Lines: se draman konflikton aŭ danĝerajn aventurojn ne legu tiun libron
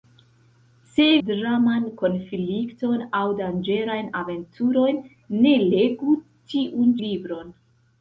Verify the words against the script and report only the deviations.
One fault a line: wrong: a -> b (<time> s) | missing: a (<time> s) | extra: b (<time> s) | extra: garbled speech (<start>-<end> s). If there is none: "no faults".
no faults